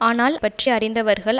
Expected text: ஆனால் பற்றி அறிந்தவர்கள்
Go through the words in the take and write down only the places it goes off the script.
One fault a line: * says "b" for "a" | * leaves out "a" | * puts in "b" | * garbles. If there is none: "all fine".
all fine